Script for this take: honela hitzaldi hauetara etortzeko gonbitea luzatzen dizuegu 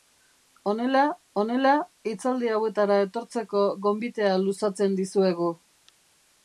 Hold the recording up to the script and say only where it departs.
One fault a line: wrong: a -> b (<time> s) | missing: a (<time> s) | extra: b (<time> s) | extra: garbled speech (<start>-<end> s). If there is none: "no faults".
extra: honela (1.4 s)